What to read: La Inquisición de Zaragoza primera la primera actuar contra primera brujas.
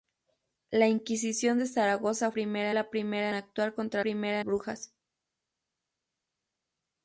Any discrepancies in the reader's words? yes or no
no